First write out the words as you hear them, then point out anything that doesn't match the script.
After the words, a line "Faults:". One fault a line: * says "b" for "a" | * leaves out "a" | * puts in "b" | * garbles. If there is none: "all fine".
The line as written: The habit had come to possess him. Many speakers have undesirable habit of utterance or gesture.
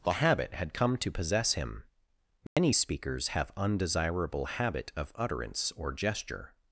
The habit had come to possess him. Many speakers have undesirable habit of utterance or gesture.
Faults:
all fine